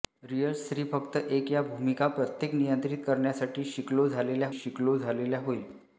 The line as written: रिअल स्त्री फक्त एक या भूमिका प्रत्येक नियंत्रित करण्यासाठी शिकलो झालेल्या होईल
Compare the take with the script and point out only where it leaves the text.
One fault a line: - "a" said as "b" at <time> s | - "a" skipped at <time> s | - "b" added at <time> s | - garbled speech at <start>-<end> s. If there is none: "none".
- "शिकलो झालेल्या" added at 4.5 s